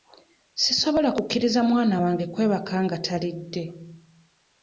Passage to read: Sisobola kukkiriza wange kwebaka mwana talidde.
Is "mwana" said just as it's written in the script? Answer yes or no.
no